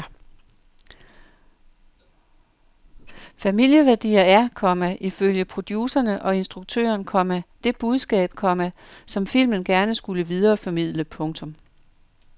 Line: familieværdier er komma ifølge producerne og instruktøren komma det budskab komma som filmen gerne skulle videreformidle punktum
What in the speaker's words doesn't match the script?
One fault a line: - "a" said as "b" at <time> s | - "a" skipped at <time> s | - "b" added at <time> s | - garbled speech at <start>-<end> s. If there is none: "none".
none